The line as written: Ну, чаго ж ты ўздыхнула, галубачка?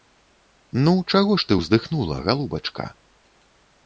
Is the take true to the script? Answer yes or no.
yes